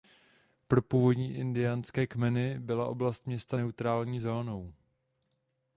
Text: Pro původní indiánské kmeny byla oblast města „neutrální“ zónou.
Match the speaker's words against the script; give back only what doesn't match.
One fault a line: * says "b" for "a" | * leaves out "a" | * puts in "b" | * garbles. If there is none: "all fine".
all fine